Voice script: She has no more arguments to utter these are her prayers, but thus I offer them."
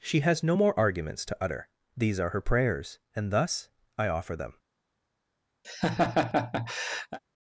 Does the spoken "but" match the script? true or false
false